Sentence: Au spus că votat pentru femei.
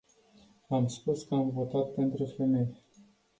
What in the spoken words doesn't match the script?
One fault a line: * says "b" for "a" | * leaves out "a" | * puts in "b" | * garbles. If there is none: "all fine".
* says "Am" for "Au"
* puts in "am"